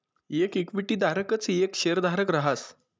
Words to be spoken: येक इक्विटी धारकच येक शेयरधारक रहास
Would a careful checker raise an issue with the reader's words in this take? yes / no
no